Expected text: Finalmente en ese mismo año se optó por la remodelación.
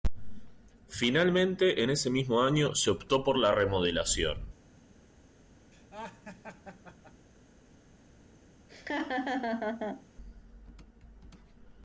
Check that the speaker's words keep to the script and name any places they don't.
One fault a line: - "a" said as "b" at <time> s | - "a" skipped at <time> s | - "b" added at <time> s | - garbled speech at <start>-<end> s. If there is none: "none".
none